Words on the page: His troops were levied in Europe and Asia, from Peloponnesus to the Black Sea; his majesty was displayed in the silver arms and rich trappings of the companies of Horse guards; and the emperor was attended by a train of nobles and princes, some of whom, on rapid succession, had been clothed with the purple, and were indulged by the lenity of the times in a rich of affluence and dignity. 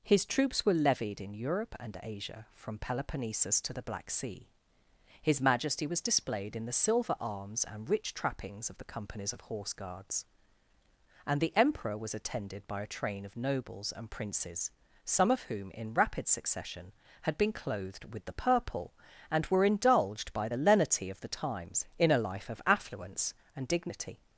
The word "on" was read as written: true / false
false